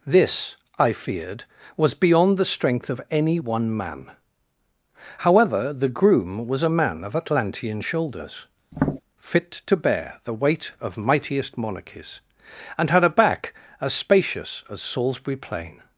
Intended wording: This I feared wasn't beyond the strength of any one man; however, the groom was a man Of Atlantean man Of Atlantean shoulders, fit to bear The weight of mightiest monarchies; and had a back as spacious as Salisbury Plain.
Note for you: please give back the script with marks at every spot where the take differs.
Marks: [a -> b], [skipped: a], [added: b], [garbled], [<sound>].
This I feared [wasn't -> was] beyond the strength of any one man; however, the groom was a man Of Atlantean [skipped: man Of Atlantean] shoulders, [tap] fit to bear The weight of mightiest monarchies; and had a back as spacious as Salisbury Plain.